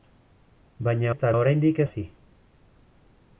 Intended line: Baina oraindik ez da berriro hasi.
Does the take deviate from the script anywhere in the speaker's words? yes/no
yes